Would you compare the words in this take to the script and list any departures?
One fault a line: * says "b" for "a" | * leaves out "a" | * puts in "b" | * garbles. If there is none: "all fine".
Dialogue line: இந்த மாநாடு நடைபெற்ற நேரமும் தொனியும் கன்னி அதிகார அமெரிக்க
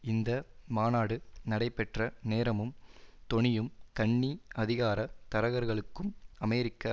* puts in "தரகர்களுக்கும்"